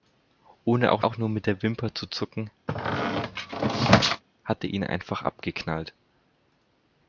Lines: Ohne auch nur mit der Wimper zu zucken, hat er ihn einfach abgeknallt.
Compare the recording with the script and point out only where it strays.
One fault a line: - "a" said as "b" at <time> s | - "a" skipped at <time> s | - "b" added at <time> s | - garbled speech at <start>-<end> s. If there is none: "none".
- "auch" added at 1.0 s